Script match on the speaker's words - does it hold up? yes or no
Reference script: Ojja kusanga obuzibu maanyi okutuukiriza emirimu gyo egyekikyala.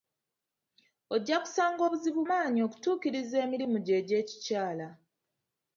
yes